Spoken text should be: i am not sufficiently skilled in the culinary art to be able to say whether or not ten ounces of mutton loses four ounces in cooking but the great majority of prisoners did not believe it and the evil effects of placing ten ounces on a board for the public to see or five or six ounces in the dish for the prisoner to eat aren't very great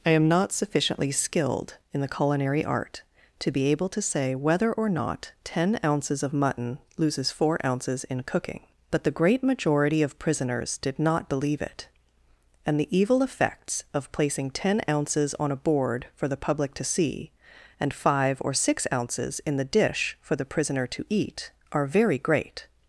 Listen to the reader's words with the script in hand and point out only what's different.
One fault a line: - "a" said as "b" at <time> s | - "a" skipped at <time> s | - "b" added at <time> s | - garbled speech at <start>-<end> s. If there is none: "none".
- "or" said as "and" at 17.8 s
- "aren't" said as "are" at 21.7 s